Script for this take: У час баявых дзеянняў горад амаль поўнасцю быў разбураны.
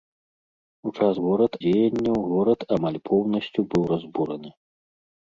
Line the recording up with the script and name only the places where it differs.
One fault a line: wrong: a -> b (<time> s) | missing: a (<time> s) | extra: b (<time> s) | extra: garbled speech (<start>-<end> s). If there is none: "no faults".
wrong: баявых -> горад (1.2 s)